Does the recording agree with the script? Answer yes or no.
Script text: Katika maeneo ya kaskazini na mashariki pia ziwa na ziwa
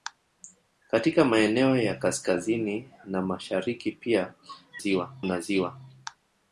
yes